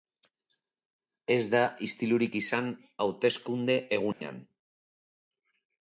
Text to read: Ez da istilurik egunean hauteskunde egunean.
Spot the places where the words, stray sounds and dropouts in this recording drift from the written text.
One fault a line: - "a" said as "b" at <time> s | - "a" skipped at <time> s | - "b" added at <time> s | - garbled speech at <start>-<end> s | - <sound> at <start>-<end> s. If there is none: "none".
- "egunean" said as "izan" at 2.4 s
- dropout at 4.1-4.2 s